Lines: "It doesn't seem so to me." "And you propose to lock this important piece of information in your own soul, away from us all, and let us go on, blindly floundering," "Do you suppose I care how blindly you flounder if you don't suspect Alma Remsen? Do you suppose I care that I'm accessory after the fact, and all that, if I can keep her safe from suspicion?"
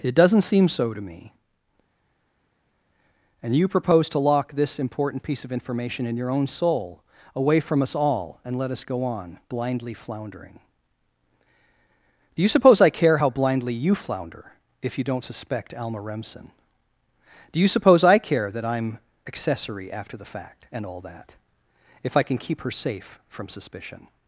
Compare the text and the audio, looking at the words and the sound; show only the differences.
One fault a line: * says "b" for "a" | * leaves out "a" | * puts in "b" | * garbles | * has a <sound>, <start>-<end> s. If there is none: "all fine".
all fine